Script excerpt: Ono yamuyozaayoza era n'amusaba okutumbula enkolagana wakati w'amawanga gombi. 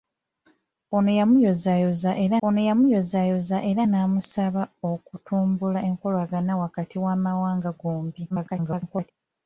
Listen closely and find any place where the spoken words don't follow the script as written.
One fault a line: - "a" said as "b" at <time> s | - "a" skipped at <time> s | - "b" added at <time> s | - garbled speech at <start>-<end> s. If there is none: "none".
- "ono yamuyozaayoza era" added at 2.4 s
- garbled speech at 8.3-9.1 s